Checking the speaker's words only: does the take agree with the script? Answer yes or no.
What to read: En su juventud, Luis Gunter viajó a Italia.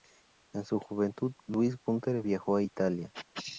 yes